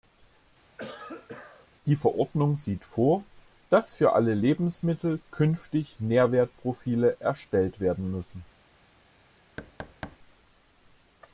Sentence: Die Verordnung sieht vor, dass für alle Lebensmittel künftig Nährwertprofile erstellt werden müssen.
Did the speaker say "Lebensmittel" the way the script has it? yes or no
yes